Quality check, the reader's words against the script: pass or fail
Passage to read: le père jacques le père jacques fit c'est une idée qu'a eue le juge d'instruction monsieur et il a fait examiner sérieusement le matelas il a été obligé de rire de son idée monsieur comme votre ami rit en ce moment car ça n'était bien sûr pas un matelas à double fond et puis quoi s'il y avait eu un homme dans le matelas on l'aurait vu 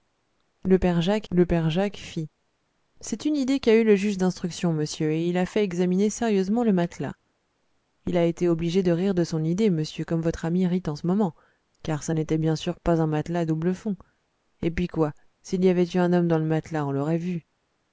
pass